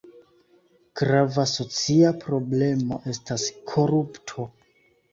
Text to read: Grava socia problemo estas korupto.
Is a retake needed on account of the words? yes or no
no